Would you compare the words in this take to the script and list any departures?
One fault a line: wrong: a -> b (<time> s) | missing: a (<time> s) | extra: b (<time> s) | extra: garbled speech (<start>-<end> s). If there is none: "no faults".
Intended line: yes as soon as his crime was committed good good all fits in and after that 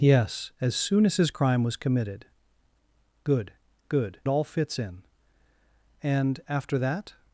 no faults